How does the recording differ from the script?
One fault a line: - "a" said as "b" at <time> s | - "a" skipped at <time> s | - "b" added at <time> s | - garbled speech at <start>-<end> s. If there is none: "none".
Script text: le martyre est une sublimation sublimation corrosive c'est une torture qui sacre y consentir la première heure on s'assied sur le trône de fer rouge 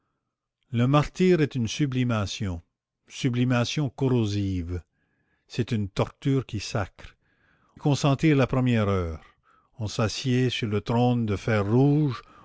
none